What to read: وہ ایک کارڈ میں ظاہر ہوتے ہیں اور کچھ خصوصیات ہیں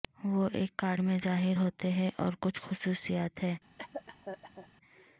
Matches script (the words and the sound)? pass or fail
fail